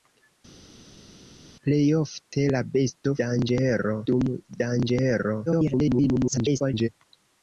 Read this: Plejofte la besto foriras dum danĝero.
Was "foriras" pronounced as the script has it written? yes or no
no